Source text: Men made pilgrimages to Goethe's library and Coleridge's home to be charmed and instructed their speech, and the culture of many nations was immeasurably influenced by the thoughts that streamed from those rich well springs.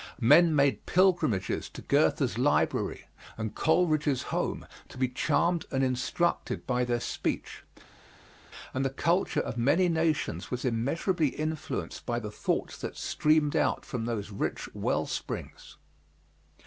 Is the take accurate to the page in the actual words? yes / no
no